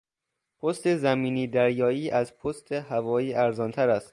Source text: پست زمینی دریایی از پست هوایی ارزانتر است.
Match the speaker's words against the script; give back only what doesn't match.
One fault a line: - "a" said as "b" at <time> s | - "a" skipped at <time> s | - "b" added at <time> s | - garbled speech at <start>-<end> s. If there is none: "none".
none